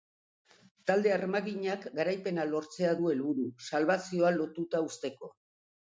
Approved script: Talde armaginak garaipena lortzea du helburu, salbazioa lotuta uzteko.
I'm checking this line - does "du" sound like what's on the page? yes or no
yes